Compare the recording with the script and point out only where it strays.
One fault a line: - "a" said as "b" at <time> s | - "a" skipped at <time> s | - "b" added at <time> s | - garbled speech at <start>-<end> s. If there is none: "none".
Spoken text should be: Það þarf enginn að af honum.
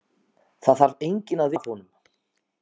none